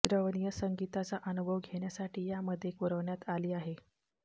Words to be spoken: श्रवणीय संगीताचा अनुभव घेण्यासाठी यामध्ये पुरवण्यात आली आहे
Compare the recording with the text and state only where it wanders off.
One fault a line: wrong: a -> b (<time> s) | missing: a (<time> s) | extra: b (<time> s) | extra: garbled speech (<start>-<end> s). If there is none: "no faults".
no faults